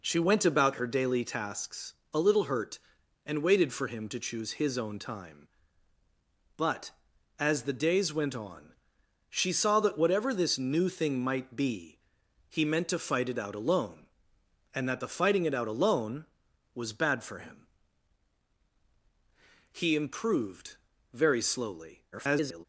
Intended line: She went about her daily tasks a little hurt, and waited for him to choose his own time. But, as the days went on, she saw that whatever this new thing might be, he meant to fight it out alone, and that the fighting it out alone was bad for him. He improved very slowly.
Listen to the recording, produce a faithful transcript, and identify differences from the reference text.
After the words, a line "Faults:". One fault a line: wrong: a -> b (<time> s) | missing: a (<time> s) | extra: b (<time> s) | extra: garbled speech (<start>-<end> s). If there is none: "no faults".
She went about her daily tasks a little hurt, and waited for him to choose his own time. But, as the days went on, she saw that whatever this new thing might be, he meant to fight it out alone, and that the fighting it out alone was bad for him. He improved very slowly. [garbled]
Faults:
extra: garbled speech (22.1-22.6 s)